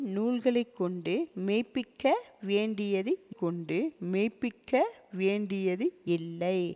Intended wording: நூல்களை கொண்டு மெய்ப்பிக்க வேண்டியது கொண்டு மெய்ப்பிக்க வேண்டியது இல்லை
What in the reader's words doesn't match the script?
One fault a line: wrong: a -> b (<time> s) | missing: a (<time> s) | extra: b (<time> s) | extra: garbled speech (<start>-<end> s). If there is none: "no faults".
no faults